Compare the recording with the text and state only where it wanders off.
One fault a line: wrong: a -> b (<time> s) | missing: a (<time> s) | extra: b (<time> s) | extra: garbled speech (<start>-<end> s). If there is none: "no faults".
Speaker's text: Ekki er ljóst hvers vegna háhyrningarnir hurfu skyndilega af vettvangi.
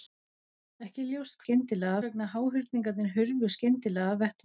wrong: hvers -> skyndilega (1.4 s)